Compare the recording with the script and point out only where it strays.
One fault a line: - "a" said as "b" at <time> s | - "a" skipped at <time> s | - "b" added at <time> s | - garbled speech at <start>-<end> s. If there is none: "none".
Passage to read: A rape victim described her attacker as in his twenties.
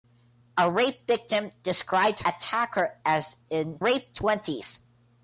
- "her" skipped at 2.2 s
- "his" said as "rape" at 3.8 s